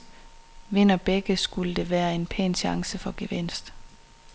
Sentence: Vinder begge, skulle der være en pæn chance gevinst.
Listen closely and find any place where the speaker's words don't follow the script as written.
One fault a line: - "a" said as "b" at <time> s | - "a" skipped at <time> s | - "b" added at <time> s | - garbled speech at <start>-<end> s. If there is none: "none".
- "for" added at 2.9 s